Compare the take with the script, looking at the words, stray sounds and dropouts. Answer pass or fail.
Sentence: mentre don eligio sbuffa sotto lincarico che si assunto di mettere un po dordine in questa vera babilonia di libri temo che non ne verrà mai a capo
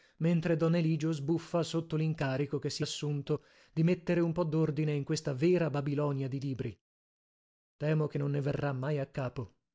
pass